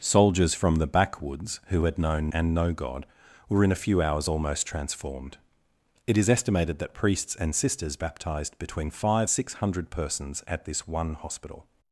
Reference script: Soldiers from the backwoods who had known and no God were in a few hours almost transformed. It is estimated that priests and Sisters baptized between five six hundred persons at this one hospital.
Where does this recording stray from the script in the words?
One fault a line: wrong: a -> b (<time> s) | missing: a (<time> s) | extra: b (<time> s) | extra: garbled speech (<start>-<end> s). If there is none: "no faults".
no faults